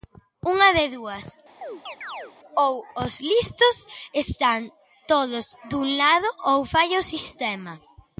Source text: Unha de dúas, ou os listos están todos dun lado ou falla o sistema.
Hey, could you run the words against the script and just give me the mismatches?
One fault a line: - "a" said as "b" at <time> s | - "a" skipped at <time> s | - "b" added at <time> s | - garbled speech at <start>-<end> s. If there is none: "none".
none